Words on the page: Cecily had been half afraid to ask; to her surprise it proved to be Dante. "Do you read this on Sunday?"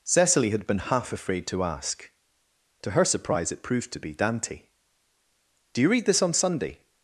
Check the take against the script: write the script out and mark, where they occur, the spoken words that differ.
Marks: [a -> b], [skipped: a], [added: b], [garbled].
Cecily had been half afraid to ask; to her surprise it proved to be Dante. "Do you read this on Sunday?"